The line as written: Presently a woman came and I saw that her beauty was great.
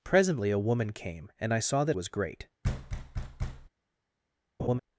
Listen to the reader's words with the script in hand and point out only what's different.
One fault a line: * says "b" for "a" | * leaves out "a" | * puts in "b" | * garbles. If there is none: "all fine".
* leaves out "her beauty"